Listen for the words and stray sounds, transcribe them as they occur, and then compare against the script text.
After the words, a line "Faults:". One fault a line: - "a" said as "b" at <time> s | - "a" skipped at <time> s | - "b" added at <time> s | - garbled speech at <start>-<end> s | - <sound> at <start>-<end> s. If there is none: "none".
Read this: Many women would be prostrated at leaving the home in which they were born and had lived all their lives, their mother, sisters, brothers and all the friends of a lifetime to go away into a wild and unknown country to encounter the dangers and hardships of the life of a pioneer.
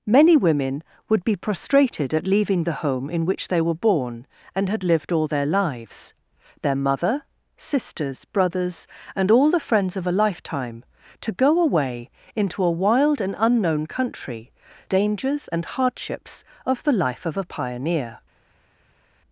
Many women would be prostrated at leaving the home in which they were born and had lived all their lives, their mother, sisters, brothers and all the friends of a lifetime to go away into a wild and unknown country dangers and hardships of the life of a pioneer.
Faults:
- "to encounter the" skipped at 14.5 s